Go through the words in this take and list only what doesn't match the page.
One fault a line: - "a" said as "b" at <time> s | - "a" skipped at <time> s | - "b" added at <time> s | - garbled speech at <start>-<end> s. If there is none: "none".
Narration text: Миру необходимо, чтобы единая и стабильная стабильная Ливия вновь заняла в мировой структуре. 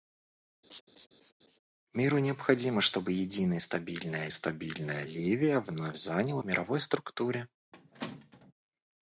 none